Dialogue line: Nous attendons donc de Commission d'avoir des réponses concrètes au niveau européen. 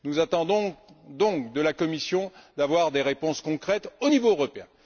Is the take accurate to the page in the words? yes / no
no